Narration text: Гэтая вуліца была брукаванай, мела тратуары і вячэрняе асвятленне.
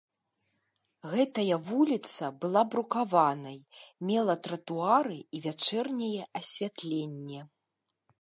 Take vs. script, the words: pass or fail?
pass